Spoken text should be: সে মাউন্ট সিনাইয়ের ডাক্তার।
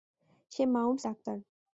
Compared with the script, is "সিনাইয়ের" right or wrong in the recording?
wrong